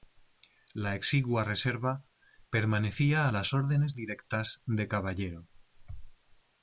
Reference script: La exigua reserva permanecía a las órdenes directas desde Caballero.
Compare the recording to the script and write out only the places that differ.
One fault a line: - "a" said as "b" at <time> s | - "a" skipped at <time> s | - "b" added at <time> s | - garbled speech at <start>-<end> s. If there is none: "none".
- "desde" said as "de" at 4.6 s